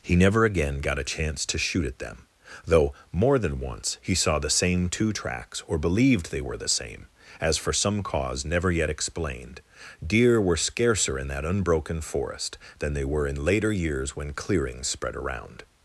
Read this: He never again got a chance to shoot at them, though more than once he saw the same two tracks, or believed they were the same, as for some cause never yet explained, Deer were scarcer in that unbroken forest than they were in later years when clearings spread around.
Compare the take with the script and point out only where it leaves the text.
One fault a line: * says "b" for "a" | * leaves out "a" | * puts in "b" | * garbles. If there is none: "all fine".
all fine